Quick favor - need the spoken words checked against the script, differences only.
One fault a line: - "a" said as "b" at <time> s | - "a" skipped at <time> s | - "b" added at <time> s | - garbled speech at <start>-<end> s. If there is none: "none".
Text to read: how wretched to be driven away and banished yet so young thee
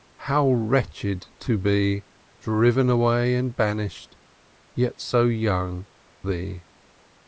none